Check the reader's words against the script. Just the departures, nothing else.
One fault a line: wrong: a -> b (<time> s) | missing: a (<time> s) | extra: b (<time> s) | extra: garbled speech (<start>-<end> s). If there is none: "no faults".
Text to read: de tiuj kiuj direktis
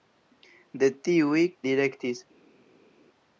missing: kiuj (1.4 s)